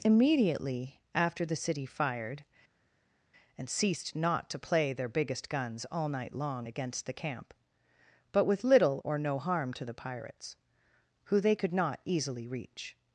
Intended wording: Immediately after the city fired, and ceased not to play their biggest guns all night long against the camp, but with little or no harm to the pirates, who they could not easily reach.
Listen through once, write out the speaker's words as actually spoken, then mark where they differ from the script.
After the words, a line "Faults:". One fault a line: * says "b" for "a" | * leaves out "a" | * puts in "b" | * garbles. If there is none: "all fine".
Immediately after the city fired, and ceased not to play their biggest guns all night long against the camp, but with little or no harm to the pirates, who they could not easily reach.
Faults:
all fine